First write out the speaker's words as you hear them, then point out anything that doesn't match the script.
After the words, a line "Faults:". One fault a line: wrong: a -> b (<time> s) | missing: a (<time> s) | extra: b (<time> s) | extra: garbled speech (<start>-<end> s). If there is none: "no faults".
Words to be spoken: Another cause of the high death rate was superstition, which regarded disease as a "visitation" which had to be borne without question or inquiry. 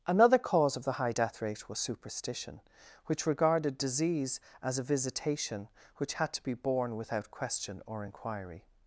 Another cause of the high death rate was superstition, which regarded disease as a "visitation" which had to be borne without question or inquiry.
Faults:
no faults